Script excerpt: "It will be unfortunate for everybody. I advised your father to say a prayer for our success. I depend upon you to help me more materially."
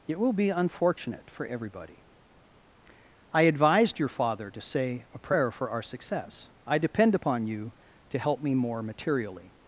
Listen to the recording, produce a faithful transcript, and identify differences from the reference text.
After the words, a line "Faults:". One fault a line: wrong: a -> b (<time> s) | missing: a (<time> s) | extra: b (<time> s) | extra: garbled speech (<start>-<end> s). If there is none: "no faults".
"It will be unfortunate for everybody. I advised your father to say a prayer for our success. I depend upon you to help me more materially."
Faults:
no faults